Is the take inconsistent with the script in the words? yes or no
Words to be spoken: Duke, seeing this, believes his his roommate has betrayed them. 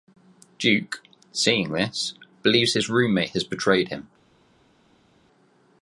yes